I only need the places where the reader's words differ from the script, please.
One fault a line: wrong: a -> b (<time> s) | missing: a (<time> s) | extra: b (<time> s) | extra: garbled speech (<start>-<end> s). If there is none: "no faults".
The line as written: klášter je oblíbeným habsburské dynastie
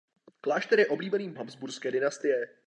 no faults